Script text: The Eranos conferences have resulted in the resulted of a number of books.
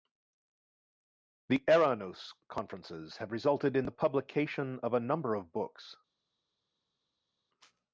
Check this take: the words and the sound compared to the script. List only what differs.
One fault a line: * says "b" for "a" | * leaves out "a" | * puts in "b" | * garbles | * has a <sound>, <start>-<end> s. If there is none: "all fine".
* says "publication" for "resulted"